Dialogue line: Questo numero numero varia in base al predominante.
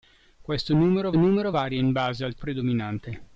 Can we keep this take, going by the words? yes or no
yes